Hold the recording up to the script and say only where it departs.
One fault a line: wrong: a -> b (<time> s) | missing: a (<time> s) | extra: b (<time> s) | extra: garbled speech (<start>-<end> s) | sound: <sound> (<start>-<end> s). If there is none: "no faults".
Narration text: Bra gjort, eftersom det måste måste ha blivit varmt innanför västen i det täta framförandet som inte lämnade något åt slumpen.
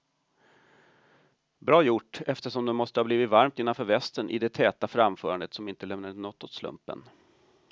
missing: måste (3.0 s)